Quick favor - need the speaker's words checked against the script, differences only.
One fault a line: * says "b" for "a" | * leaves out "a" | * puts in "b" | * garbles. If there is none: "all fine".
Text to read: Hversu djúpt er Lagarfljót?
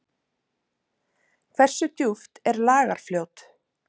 all fine